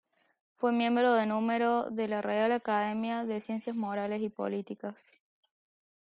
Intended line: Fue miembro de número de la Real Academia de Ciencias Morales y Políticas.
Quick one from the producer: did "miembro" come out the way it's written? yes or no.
yes